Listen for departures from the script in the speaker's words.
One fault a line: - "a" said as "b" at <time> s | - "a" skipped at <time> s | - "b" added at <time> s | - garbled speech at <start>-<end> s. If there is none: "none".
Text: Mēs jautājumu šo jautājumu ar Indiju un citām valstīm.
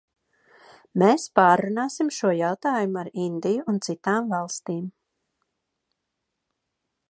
- "jautājumu" said as "pārrunāsim" at 1.4 s